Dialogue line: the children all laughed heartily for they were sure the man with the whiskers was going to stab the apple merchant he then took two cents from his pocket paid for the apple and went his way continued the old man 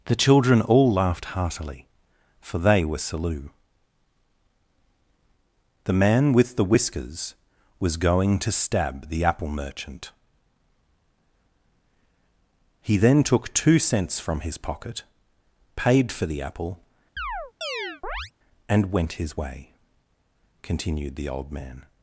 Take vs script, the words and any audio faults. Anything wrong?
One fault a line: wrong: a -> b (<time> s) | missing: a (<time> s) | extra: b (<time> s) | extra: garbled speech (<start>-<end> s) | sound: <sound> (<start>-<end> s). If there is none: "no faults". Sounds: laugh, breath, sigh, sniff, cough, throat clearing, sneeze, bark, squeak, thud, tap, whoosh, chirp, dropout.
wrong: sure -> salu (3.0 s)
sound: chirp (17.2-18.3 s)